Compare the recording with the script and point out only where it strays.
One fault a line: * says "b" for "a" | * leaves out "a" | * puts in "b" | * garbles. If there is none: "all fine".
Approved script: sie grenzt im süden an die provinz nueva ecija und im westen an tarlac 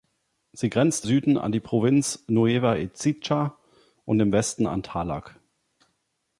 * leaves out "im"